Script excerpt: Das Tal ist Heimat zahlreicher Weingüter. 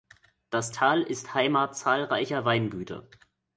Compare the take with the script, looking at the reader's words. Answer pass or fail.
pass